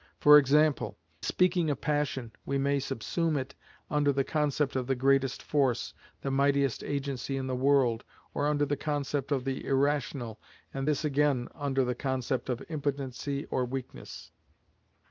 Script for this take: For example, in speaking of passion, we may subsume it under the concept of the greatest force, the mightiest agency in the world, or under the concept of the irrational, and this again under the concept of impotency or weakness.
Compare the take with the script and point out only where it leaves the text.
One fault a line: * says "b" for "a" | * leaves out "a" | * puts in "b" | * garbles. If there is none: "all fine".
* leaves out "in"